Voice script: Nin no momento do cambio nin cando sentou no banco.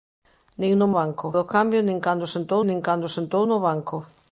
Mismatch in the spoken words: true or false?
true